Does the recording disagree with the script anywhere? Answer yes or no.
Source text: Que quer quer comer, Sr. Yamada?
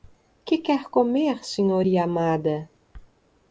yes